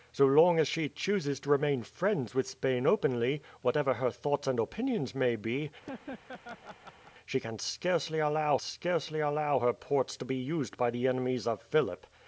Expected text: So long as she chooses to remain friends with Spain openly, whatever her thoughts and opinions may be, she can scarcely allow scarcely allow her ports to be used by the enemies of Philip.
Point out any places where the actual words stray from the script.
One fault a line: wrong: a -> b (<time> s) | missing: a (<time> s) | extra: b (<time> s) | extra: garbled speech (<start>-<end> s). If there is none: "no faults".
no faults